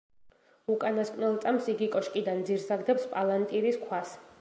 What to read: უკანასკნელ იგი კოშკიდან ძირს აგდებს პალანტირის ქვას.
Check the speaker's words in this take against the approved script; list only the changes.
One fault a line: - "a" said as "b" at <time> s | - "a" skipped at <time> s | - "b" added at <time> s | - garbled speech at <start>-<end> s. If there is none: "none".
- "წამს" added at 1.4 s